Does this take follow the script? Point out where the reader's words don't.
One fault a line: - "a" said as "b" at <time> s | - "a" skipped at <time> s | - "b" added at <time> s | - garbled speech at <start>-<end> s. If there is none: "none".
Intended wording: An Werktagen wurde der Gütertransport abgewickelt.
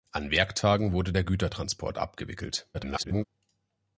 - garbled speech at 2.7-3.2 s